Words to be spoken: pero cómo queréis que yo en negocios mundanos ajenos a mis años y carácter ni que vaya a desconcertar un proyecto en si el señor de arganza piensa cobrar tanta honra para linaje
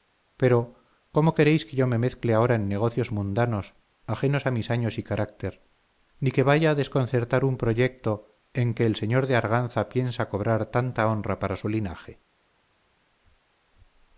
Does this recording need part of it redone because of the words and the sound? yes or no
yes